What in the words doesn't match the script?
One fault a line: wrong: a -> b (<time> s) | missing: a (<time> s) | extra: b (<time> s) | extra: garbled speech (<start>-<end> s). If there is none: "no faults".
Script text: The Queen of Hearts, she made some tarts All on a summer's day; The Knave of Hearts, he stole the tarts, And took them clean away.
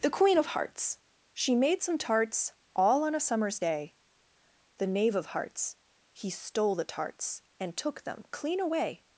no faults